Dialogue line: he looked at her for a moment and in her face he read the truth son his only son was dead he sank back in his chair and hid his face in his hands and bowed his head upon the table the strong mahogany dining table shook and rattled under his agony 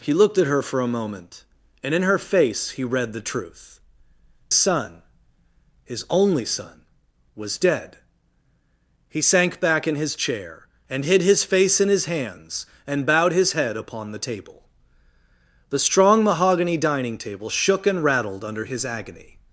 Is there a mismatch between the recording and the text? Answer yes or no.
no